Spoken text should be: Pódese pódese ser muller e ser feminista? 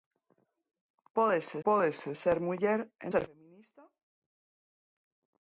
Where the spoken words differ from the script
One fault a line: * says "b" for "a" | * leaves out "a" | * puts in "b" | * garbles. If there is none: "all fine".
all fine